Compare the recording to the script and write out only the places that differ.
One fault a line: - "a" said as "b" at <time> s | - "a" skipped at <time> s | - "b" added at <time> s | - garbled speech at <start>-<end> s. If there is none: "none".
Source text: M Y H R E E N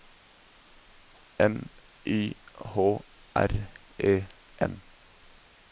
- "E" skipped at 4.2 s